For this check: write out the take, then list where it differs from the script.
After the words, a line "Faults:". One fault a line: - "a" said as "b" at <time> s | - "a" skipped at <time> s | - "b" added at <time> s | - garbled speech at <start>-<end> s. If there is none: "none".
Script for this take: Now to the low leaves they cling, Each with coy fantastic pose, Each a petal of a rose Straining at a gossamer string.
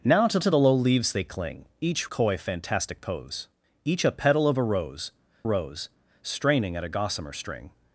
Now to to the low leaves they cling, Each coy fantastic pose, Each a petal of a rose rose Straining at a gossamer string.
Faults:
- "to" added at 0.4 s
- "with" skipped at 2.1 s
- "rose" added at 5.4 s